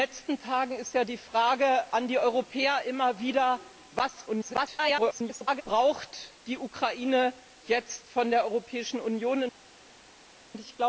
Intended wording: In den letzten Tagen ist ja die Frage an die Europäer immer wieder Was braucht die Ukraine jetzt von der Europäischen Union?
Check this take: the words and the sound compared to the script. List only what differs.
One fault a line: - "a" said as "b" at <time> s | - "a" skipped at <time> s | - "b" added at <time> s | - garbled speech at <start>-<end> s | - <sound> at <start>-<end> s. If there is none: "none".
- garbled speech at 4.3-5.6 s